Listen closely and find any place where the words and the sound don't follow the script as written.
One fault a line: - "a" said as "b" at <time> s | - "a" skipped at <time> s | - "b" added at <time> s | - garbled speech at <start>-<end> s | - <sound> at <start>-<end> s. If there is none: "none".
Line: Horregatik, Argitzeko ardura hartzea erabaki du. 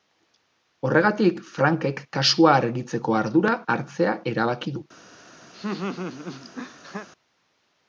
- "Frankek kasua" added at 1.6 s
- laugh at 5.5-7.1 s